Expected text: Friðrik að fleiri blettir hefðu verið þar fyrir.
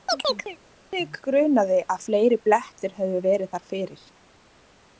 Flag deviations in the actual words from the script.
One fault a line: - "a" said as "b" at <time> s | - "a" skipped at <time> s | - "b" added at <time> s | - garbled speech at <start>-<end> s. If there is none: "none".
- "grunaði" added at 1.2 s